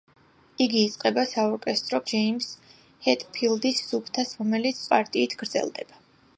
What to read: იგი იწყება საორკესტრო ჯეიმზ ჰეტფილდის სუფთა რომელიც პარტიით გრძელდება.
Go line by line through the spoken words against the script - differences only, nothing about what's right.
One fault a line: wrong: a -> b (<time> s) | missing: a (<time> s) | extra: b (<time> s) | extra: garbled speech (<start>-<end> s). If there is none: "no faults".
no faults